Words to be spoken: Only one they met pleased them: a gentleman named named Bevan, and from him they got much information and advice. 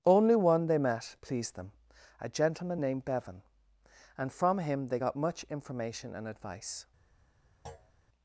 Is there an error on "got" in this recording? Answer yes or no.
no